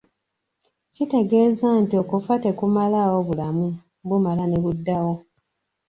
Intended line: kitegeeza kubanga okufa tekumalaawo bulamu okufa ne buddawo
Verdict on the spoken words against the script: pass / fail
fail